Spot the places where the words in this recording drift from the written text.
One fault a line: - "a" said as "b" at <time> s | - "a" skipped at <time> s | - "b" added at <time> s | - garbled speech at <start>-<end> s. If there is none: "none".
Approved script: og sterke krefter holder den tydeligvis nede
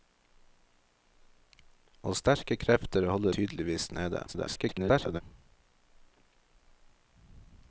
- "den" skipped at 3.3 s
- garbled speech at 4.3-5.2 s